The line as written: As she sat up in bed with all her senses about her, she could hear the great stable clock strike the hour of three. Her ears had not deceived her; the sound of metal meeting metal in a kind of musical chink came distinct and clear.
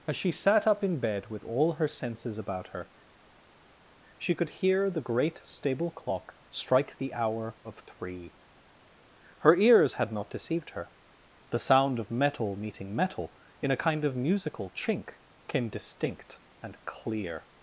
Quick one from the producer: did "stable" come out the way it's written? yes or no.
yes